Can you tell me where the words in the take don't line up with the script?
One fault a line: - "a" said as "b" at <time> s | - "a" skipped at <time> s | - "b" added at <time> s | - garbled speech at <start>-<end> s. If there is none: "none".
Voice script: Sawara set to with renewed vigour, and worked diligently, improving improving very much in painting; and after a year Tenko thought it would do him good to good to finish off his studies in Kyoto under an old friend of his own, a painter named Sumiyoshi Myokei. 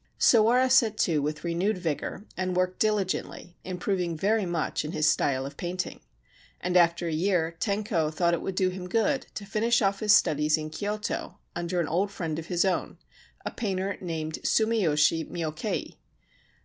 - "improving" skipped at 4.1 s
- "his style of" added at 4.9 s
- "good to" skipped at 9.5 s